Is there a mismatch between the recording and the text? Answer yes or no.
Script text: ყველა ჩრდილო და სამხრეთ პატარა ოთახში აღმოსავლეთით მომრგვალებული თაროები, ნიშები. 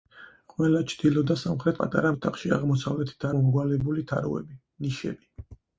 no